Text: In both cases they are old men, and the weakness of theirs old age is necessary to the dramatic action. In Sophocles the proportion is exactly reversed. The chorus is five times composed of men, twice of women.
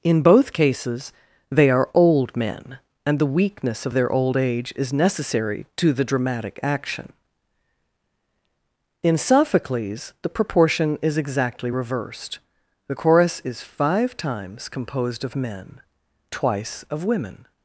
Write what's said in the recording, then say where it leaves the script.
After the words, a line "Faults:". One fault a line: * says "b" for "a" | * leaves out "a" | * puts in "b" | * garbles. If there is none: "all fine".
In both cases they are old men, and the weakness of their old age is necessary to the dramatic action. In Sophocles the proportion is exactly reversed. The chorus is five times composed of men, twice of women.
Faults:
* says "their" for "theirs"